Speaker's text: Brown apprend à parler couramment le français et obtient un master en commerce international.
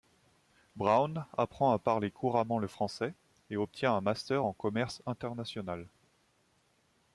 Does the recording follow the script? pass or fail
pass